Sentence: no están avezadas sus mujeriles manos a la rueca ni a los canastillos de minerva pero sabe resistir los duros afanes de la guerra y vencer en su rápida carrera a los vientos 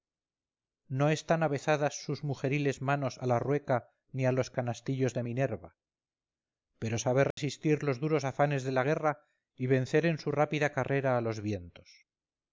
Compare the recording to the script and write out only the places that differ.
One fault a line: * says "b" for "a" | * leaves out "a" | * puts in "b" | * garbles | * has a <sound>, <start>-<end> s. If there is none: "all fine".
* has a dropout, 7.3-7.4 s